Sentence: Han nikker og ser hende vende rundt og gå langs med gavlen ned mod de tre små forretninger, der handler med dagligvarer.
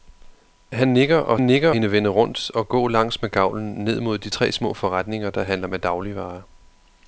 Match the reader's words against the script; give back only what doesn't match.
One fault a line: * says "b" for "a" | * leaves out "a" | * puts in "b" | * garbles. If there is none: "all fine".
* says "nikker" for "ser"